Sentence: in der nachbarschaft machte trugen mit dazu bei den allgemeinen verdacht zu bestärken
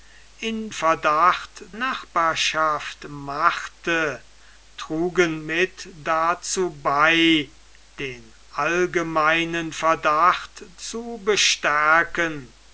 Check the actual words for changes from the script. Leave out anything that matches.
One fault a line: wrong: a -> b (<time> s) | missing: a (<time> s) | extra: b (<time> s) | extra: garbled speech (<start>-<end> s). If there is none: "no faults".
wrong: der -> verdacht (0.7 s)